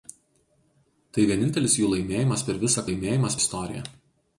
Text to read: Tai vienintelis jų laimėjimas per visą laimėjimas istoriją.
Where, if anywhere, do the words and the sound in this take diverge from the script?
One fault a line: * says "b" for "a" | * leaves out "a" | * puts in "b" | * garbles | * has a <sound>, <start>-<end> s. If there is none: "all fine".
all fine